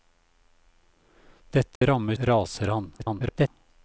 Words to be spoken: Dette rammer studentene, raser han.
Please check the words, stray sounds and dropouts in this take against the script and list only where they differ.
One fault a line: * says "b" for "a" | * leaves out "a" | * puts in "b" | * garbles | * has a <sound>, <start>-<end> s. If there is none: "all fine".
* has a dropout, 1.8-1.8 s
* leaves out "studentene"
* garbles